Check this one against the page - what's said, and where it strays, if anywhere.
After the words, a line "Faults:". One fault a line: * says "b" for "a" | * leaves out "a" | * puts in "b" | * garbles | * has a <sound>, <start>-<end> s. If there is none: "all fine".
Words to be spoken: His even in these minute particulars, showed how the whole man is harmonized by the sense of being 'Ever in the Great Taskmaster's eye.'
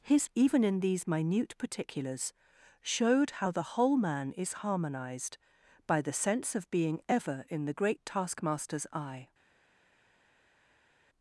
His even in these minute particulars, showed how the whole man is harmonized by the sense of being 'Ever in the Great Taskmaster's eye.'
Faults:
all fine